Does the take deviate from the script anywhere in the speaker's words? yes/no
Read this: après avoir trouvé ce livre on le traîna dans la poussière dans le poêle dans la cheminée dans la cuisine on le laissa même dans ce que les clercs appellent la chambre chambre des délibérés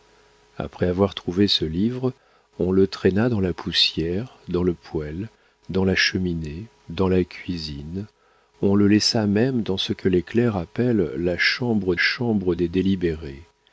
no